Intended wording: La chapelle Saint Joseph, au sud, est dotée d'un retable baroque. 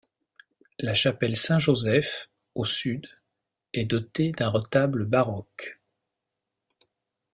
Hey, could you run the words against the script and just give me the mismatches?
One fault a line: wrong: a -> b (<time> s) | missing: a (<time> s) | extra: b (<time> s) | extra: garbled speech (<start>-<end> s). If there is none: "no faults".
no faults